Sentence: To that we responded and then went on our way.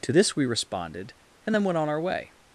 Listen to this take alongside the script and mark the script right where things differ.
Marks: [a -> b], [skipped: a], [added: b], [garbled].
To [that -> this] we responded and then went on our way.